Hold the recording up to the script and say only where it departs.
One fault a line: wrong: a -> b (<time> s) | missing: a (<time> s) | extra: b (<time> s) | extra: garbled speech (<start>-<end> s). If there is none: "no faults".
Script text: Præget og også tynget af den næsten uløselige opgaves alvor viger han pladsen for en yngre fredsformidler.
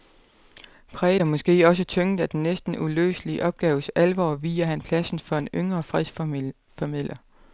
extra: måske (1.3 s)